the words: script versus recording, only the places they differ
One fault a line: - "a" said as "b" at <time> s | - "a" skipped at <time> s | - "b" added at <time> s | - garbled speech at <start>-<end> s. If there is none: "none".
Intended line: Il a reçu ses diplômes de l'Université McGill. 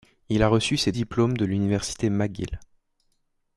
none